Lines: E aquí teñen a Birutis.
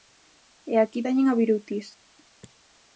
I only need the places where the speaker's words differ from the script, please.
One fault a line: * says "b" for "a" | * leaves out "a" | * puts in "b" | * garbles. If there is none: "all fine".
all fine